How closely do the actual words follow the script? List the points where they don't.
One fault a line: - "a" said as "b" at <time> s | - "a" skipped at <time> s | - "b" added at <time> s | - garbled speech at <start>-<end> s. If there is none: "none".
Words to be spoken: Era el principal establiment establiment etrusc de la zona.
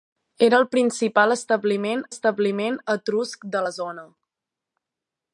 none